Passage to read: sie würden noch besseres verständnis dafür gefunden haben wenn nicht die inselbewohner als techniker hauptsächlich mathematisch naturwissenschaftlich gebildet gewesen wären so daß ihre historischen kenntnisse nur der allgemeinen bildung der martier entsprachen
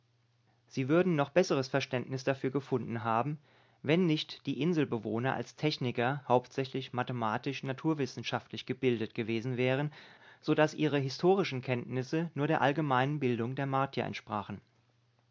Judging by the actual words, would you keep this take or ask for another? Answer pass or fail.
pass